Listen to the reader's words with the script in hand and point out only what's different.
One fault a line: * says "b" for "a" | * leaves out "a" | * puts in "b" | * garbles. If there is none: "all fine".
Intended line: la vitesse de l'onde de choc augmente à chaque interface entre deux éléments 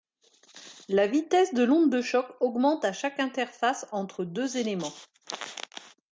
all fine